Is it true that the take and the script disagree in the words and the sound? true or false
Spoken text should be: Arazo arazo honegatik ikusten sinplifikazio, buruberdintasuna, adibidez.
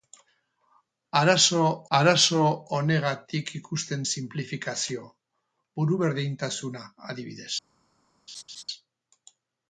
true